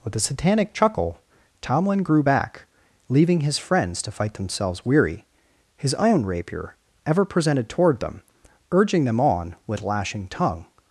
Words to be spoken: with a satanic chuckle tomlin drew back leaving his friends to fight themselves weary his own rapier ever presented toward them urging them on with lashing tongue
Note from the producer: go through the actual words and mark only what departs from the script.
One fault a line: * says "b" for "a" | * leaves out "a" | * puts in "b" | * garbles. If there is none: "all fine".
* says "grew" for "drew"